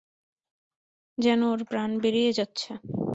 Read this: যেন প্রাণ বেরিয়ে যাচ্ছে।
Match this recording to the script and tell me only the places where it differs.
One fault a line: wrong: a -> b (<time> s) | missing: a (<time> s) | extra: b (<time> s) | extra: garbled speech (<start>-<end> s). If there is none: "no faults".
extra: ওর (1.4 s)